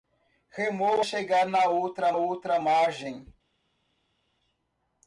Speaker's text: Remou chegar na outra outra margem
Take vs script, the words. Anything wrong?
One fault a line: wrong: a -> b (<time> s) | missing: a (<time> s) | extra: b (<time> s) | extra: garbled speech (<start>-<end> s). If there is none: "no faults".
no faults